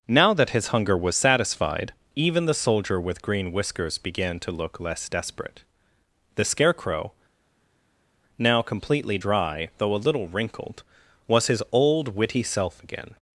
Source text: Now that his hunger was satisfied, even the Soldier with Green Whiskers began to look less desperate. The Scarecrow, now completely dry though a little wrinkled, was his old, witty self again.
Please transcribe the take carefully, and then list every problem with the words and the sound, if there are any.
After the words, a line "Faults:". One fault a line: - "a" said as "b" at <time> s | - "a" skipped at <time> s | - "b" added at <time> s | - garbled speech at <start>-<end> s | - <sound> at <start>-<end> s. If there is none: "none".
Now that his hunger was satisfied, even the Soldier with Green Whiskers began to look less desperate. The Scarecrow, now completely dry though a little wrinkled, was his old, witty self again.
Faults:
none